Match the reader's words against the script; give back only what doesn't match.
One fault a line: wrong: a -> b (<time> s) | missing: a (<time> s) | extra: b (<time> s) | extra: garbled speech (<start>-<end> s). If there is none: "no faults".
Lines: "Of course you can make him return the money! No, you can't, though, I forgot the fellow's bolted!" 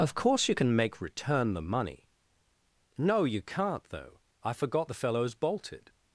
missing: him (1.0 s)